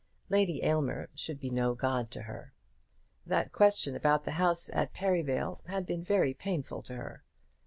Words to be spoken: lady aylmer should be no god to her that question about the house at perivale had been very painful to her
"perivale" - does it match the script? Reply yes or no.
yes